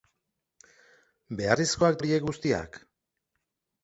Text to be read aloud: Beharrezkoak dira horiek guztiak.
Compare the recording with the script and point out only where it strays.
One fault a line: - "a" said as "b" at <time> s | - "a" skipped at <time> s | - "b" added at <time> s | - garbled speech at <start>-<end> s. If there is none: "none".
- "dira" skipped at 2.0 s